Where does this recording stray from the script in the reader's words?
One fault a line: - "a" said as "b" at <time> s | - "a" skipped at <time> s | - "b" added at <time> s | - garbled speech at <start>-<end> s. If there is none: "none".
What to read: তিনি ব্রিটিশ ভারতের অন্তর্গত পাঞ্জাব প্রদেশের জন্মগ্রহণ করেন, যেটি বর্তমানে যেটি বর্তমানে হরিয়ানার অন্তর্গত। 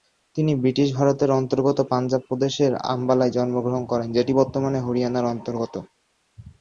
- "আম্বালায়" added at 2.9 s
- "যেটি বর্তমানে" skipped at 4.8 s